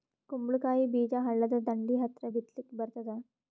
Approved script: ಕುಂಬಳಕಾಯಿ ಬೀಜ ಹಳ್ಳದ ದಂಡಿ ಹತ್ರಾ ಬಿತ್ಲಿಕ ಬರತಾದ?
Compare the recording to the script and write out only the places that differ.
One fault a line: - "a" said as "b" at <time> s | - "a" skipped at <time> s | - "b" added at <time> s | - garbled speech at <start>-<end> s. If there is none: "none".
none